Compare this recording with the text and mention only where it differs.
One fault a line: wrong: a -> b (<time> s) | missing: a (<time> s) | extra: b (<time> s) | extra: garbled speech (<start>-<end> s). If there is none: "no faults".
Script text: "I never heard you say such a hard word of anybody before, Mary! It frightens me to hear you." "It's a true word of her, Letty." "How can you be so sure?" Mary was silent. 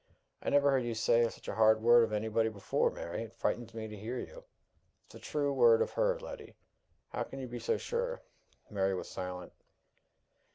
no faults